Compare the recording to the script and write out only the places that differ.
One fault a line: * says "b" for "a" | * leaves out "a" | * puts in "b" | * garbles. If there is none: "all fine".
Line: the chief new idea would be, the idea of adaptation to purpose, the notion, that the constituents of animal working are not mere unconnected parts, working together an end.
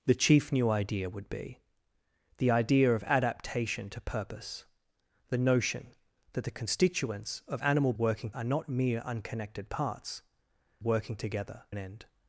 all fine